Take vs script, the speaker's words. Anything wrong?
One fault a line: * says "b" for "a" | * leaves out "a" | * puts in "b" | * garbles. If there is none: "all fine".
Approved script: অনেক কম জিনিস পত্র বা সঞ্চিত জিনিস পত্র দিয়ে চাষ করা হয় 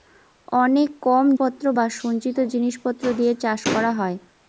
* leaves out "জিনিস"